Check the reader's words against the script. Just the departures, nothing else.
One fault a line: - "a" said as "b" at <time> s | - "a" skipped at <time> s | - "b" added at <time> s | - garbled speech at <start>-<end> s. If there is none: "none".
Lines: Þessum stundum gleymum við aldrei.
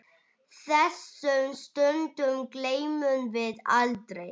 none